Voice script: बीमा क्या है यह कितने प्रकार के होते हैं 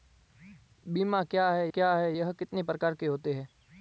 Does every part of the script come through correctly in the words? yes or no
no